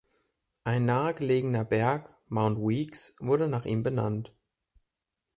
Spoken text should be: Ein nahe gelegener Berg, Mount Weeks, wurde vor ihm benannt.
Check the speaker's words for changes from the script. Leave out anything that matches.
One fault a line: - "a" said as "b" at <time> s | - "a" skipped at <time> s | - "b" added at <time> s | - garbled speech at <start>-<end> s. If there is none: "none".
- "vor" said as "nach" at 3.5 s